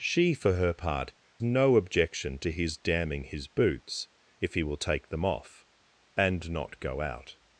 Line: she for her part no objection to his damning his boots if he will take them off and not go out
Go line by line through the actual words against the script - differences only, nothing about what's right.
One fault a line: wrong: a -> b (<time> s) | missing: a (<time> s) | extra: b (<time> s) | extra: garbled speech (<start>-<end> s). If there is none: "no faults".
no faults